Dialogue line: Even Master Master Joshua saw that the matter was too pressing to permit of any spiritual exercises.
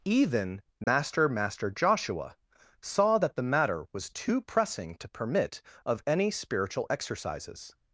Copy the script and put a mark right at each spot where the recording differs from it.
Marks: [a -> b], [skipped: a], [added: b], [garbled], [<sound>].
Even Master [dropout] Master Joshua saw that the matter was too pressing to permit of any spiritual exercises.